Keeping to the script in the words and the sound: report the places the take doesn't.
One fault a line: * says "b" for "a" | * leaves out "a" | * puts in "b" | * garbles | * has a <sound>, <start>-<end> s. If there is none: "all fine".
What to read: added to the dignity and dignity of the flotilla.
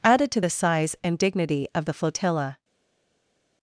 * says "size" for "dignity"